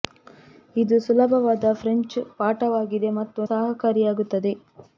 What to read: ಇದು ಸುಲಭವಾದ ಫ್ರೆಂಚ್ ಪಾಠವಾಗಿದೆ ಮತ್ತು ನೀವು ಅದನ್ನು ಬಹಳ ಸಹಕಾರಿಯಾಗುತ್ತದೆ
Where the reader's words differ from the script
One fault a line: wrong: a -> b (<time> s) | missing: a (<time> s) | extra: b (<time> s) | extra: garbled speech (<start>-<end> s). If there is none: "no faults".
missing: ನೀವು ಅದನ್ನು ಬಹಳ (3.4 s)